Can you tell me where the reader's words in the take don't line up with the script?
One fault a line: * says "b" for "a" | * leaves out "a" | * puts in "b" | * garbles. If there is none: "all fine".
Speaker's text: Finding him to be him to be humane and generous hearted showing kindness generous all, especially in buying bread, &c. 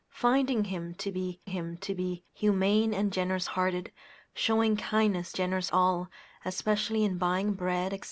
all fine